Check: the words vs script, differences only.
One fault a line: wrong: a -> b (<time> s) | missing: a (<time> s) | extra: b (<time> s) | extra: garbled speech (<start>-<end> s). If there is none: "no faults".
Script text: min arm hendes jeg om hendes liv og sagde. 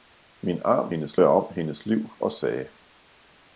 no faults